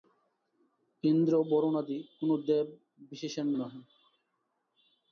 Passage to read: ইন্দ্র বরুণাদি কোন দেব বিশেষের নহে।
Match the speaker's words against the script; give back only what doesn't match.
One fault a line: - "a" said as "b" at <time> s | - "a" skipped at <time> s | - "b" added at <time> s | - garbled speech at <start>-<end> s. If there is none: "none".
none